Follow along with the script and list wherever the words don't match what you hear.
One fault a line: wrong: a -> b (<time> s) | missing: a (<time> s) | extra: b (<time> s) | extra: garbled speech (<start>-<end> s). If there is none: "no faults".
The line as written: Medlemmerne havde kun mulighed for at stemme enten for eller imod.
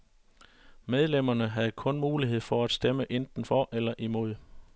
no faults